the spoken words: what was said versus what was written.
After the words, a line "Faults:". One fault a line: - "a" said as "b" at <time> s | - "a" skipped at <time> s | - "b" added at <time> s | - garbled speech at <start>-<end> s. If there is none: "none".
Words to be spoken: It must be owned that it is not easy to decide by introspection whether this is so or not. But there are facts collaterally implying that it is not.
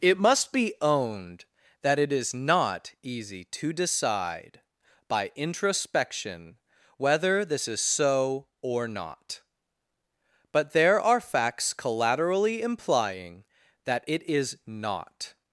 It must be owned that it is not easy to decide by introspection whether this is so or not. But there are facts collaterally implying that it is not.
Faults:
none